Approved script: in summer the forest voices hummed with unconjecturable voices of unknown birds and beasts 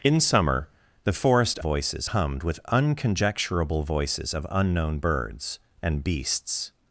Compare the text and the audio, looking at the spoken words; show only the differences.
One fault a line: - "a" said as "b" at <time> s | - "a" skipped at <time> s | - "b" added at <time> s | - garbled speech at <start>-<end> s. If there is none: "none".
none